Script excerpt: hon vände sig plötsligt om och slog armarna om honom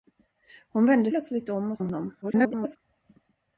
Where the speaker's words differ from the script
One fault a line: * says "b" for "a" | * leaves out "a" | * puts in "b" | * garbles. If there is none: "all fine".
* leaves out "sig"
* leaves out "slog armarna"
* garbles